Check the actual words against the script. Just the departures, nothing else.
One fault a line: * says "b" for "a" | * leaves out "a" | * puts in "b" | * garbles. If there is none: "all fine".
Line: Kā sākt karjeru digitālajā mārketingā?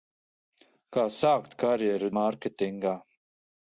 * leaves out "digitālajā"